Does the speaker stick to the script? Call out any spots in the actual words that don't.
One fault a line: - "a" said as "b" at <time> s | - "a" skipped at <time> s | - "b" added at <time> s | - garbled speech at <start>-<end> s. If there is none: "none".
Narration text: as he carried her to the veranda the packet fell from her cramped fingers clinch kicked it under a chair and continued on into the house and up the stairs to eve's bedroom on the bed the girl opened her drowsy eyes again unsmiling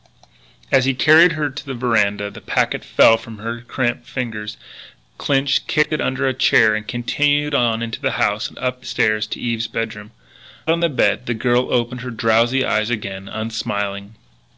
none